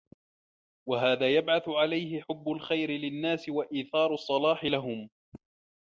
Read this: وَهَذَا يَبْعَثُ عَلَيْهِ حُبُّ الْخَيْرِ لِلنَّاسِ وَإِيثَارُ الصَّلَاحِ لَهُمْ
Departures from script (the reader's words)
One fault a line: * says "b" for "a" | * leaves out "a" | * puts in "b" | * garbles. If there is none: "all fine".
all fine